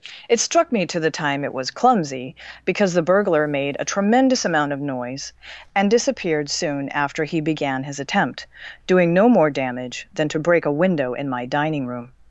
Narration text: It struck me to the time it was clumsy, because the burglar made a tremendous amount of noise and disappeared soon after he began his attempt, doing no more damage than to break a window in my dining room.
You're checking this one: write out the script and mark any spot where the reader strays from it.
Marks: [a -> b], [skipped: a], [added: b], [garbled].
It struck me to the time it was clumsy, because the burglar made a tremendous amount of noise and disappeared soon after he began his attempt, doing no more damage than to break a window in my dining room.